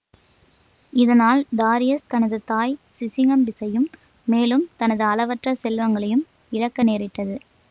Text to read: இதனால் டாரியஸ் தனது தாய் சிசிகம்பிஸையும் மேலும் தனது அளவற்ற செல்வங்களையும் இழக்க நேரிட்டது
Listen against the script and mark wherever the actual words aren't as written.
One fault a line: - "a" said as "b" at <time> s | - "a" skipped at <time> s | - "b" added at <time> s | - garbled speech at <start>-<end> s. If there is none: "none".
none